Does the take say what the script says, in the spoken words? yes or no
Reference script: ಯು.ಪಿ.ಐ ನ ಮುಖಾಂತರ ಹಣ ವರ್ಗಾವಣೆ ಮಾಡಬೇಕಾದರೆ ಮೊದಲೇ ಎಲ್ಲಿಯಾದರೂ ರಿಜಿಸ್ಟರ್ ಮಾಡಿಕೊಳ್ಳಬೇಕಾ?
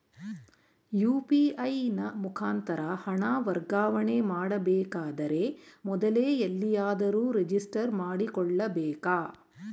yes